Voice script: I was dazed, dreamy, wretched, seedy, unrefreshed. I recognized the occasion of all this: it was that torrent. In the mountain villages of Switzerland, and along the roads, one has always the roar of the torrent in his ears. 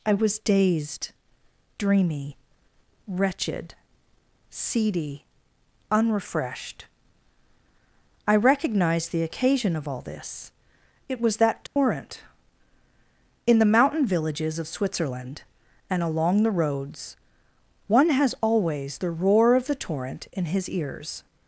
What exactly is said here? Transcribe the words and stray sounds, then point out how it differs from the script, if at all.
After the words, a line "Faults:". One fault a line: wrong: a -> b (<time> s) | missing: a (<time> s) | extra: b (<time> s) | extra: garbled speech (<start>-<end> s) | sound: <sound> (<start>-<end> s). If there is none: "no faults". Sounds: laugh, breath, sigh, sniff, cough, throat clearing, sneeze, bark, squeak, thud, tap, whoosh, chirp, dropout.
I was dazed, dreamy, wretched, seedy, unrefreshed. I recognized the occasion of all this: it was that torrent. In the mountain villages of Switzerland, and along the roads, one has always the roar of the torrent in his ears.
Faults:
sound: dropout (11.7-11.8 s)